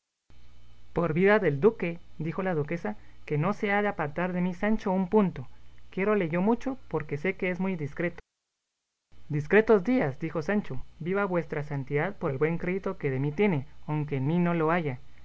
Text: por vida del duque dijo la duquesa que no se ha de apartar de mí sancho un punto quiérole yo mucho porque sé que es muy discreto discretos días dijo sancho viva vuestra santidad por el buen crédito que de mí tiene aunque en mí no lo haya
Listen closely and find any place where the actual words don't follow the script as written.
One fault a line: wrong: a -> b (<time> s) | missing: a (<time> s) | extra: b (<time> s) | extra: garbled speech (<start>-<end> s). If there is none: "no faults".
no faults